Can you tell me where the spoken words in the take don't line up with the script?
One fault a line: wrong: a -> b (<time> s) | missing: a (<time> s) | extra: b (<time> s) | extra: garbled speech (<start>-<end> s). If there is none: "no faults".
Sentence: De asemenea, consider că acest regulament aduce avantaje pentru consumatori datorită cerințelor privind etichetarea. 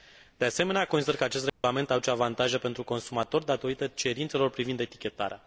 no faults